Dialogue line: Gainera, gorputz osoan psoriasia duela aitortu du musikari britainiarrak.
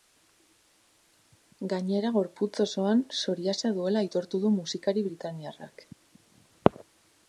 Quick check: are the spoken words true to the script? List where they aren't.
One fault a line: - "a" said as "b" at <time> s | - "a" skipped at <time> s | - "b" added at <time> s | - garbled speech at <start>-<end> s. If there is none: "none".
none